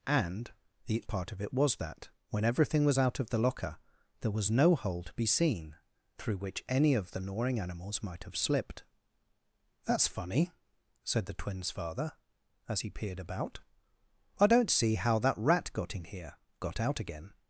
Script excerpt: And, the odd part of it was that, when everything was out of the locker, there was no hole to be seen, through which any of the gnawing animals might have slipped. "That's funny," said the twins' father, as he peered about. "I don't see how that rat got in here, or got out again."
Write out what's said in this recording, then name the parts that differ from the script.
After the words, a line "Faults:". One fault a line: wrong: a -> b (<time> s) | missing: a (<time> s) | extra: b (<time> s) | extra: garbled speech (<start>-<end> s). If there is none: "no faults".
And, the part of it was that, when everything was out of the locker, there was no hole to be seen, through which any of the gnawing animals might have slipped. "That's funny," said the twins' father, as he peered about. "I don't see how that rat got in here, got out again."
Faults:
missing: odd (1.0 s)
missing: or (16.4 s)